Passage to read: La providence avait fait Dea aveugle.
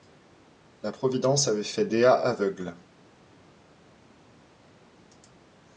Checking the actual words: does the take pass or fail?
pass